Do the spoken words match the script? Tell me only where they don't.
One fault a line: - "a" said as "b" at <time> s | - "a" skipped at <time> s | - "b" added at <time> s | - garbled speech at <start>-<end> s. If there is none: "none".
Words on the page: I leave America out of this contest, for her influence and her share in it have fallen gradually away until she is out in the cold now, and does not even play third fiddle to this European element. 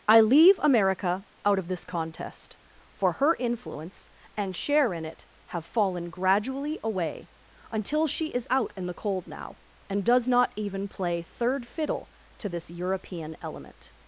- "her" skipped at 4.5 s